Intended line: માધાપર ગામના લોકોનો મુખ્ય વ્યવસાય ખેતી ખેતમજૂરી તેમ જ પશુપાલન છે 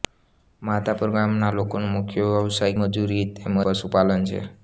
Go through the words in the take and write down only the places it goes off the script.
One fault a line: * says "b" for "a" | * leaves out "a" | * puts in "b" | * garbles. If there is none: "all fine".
* leaves out "ખેતી"
* leaves out "જ"